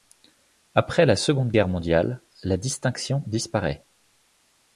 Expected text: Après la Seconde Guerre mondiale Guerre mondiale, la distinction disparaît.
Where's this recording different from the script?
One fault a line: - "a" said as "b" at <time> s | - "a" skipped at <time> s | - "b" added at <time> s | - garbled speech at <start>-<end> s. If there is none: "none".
- "Guerre mondiale" skipped at 2.2 s